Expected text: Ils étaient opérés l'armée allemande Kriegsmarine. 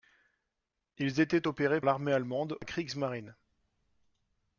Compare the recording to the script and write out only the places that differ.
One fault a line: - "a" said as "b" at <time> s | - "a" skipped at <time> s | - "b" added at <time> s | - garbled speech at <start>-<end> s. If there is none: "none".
none